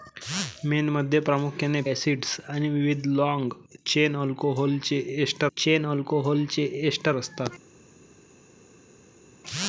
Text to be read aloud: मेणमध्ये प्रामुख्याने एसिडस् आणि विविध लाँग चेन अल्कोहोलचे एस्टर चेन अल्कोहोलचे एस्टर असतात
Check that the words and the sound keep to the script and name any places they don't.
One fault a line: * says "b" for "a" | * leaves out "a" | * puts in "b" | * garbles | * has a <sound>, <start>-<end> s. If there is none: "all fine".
all fine